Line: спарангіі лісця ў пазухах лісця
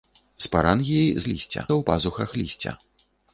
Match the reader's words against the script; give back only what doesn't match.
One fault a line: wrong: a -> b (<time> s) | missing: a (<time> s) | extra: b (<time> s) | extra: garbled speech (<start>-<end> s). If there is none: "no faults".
no faults